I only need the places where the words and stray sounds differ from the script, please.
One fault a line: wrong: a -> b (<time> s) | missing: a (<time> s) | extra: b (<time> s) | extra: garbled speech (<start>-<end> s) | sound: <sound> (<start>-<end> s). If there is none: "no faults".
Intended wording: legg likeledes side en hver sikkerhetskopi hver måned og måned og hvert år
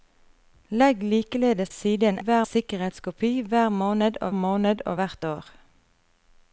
no faults